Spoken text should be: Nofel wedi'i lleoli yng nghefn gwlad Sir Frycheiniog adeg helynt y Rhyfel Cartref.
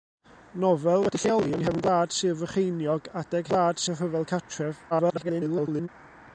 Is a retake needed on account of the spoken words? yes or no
yes